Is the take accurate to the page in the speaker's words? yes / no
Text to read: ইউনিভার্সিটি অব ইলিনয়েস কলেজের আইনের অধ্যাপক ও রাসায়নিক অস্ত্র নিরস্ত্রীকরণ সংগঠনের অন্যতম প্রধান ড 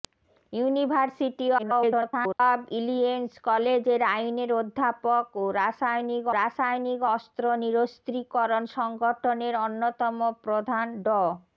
no